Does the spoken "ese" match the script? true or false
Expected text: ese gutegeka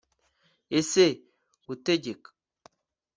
true